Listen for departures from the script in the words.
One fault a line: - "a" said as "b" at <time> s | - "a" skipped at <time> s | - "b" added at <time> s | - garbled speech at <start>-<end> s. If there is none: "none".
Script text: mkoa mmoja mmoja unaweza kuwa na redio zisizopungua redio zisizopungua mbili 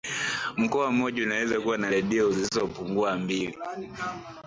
- "mmoja" skipped at 1.2 s
- "redio zisizopungua" skipped at 3.2 s